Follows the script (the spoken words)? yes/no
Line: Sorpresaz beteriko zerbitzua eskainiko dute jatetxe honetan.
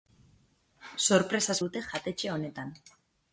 no